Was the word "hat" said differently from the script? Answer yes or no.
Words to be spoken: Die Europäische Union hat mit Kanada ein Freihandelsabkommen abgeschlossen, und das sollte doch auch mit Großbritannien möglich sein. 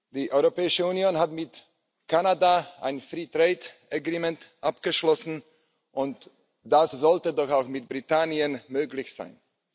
no